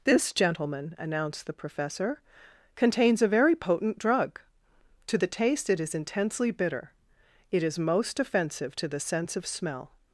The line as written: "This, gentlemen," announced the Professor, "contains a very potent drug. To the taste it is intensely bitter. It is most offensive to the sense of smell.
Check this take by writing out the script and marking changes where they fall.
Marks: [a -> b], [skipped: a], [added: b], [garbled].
"This, gentlemen," announced the Professor, "contains a very potent drug. To the taste it is intensely bitter. It is most offensive to the sense of smell.